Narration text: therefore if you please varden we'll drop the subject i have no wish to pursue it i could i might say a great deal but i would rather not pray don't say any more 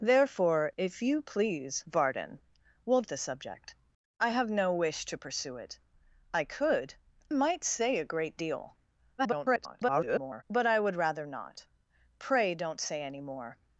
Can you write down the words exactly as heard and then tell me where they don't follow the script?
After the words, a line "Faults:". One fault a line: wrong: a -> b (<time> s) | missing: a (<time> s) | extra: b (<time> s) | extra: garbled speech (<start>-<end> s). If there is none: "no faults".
therefore if you please varden we'll the subject i have no wish to pursue it i could might say a great deal [garbled] but i would rather not pray don't say any more
Faults:
missing: drop (3.0 s)
missing: i (7.0 s)
extra: garbled speech (9.2-10.4 s)